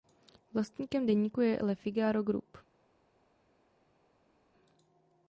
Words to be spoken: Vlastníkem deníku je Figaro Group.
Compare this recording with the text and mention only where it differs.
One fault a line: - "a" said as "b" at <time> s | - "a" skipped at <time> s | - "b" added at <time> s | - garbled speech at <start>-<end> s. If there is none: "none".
- "Le" added at 1.6 s